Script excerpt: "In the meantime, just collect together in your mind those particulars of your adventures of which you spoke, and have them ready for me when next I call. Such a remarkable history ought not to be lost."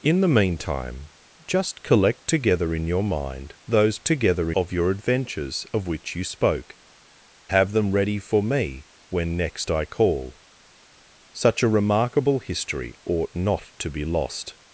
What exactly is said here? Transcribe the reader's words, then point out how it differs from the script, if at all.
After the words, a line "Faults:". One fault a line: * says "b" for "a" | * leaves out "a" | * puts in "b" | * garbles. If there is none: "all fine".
"In the meantime, just collect together in your mind those together of your adventures of which you spoke, have them ready for me when next I call. Such a remarkable history ought not to be lost."
Faults:
* says "together" for "particulars"
* leaves out "and"